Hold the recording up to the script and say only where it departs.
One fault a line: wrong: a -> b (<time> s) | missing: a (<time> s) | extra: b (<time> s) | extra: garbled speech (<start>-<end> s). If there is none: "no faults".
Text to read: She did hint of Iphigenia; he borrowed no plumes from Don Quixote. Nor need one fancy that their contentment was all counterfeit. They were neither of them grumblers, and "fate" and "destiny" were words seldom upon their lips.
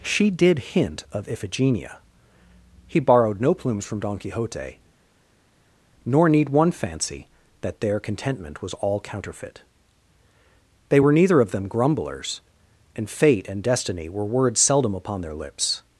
no faults